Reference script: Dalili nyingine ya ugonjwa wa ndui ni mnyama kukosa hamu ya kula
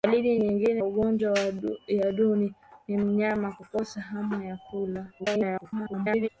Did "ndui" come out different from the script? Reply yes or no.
no